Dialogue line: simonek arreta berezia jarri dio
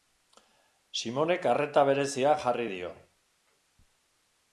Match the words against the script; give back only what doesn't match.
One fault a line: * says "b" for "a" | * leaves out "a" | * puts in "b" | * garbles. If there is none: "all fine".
all fine